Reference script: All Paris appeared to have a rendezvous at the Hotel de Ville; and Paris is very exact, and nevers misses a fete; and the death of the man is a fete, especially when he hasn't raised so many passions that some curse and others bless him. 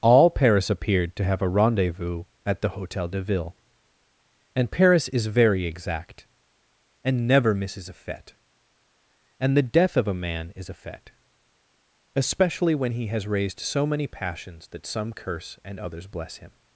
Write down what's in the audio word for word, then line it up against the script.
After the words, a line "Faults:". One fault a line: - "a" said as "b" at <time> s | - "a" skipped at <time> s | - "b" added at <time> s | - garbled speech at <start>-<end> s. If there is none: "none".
All Paris appeared to have a rendezvous at the Hotel de Ville; and Paris is very exact, and never misses a fete; and the death of a man is a fete, especially when he has raised so many passions that some curse and others bless him.
Faults:
- "nevers" said as "never" at 7.3 s
- "the" said as "a" at 10.1 s
- "hasn't" said as "has" at 13.1 s